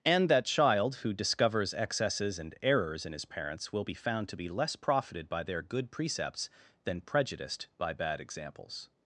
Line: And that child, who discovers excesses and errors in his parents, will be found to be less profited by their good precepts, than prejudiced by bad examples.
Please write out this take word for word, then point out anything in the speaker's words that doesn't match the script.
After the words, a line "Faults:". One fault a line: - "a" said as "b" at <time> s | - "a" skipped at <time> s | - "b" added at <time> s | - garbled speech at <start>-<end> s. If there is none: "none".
And that child, who discovers excesses and errors in his parents, will be found to be less profited by their good precepts, than prejudiced by bad examples.
Faults:
none